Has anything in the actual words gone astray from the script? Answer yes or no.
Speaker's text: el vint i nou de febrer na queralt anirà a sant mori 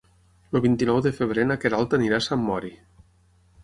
no